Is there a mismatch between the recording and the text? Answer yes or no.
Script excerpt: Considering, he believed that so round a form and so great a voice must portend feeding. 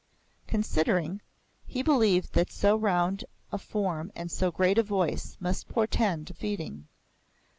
no